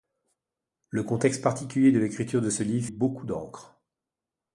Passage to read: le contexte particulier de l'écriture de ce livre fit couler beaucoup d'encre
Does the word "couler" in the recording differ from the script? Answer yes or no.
yes